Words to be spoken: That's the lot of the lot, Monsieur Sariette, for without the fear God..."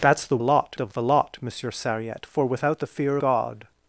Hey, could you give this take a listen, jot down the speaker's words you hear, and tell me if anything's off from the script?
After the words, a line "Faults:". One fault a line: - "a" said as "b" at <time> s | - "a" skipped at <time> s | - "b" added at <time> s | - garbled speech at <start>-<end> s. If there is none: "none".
That's the lot of the lot, Monsieur Sariette, for without the fear God..."
Faults:
none